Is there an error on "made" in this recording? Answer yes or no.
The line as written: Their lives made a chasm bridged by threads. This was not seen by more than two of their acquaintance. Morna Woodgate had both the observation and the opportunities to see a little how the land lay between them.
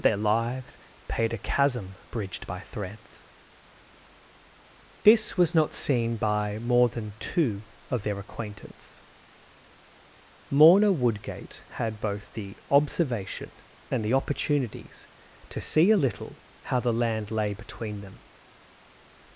yes